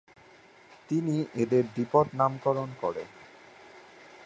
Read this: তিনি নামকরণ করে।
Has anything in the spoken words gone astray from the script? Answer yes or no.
yes